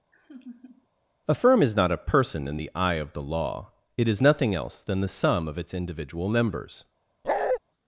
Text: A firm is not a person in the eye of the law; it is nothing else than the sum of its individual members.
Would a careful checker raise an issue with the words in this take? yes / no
no